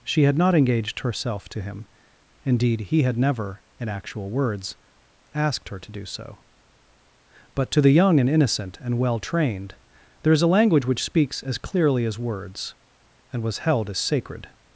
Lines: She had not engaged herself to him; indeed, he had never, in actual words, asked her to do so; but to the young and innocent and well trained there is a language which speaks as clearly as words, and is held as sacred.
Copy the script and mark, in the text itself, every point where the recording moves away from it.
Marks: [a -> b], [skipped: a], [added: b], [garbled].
She had not engaged herself to him; indeed, he had never, in actual words, asked her to do so; but to the young and innocent and well trained there is a language which speaks as clearly as words, and [is -> was] held as sacred.